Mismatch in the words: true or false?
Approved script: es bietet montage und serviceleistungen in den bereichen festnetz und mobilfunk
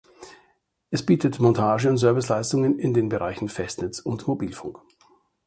false